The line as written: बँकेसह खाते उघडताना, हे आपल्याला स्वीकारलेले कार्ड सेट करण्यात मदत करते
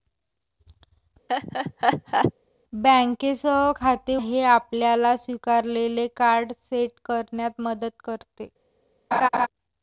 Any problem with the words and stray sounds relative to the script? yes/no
yes